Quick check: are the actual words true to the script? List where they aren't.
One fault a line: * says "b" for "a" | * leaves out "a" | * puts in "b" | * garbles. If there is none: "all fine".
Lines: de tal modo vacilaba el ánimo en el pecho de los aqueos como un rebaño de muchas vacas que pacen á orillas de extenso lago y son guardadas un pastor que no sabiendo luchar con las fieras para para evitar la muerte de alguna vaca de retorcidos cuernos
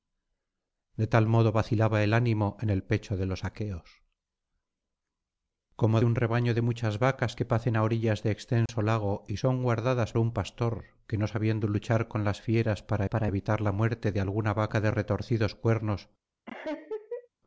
all fine